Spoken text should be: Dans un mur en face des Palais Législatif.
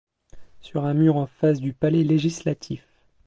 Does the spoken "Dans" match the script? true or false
false